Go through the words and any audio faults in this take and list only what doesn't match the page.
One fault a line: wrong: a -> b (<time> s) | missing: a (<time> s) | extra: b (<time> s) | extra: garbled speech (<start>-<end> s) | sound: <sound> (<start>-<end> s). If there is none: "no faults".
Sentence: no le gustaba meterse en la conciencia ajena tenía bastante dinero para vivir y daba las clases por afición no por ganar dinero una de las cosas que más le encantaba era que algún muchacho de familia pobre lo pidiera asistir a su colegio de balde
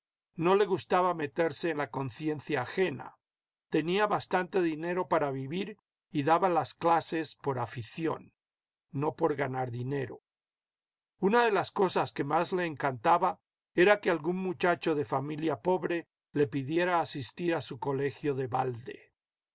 wrong: lo -> le (16.3 s)